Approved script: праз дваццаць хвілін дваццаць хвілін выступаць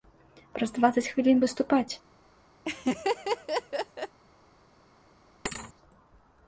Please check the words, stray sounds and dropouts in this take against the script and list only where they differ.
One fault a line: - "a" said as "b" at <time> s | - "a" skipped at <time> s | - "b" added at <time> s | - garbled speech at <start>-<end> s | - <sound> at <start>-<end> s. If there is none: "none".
- "дваццаць хвілін" skipped at 1.4 s
- laugh at 2.6-4.2 s
- thud at 5.4-5.7 s